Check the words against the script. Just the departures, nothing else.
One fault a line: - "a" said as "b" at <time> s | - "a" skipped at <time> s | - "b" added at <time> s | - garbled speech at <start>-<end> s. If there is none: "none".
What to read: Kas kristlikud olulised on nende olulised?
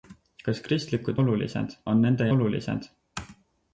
none